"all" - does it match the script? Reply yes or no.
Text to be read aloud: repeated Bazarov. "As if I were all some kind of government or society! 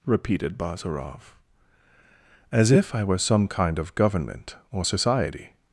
no